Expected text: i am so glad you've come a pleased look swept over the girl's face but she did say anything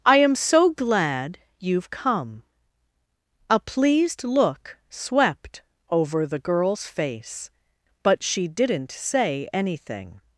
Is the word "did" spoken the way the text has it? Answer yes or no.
no